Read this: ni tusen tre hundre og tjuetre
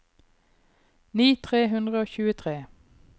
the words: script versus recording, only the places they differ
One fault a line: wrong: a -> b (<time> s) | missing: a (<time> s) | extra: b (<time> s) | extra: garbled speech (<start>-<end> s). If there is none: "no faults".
missing: tusen (1.3 s)